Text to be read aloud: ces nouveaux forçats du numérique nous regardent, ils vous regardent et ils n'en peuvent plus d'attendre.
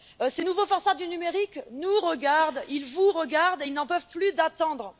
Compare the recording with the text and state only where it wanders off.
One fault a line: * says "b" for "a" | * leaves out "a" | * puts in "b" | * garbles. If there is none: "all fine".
all fine